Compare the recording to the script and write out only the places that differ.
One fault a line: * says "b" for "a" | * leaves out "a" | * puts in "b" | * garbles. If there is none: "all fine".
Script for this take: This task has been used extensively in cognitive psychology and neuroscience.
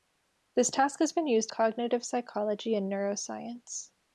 * leaves out "extensively in"